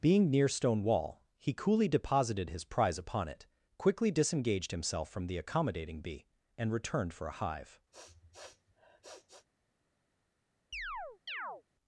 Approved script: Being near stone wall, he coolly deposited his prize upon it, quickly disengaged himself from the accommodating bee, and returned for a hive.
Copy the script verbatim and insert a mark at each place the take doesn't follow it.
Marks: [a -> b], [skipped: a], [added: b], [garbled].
Being near stone wall, he coolly deposited his prize upon it, quickly disengaged himself from the accommodating bee, and returned for a hive.